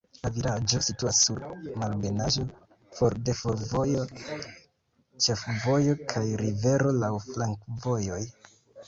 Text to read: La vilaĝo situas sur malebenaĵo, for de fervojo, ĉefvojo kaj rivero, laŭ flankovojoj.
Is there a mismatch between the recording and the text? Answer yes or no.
no